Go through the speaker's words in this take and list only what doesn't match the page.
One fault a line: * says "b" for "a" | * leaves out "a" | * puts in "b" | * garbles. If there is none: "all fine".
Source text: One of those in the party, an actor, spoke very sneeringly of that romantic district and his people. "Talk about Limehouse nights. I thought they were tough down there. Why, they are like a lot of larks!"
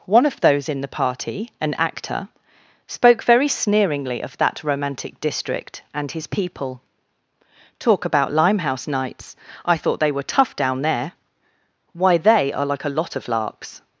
all fine